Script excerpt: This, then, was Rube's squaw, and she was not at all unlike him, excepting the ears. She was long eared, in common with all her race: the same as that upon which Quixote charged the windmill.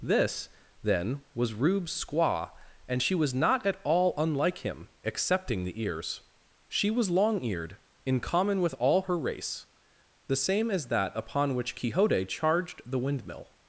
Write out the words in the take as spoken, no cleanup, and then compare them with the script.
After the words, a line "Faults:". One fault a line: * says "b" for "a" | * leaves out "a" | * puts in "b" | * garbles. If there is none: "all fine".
This, then, was Rube's squaw, and she was not at all unlike him, excepting the ears. She was long eared, in common with all her race: the same as that upon which Quixote charged the windmill.
Faults:
all fine